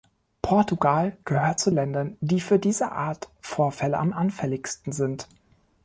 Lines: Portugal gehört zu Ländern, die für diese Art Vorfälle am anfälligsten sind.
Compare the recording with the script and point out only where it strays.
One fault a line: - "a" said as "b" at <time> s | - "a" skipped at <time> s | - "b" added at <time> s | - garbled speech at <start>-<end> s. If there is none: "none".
none